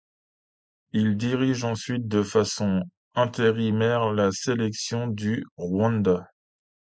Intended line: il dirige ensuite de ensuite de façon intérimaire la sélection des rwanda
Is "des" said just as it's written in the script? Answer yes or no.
no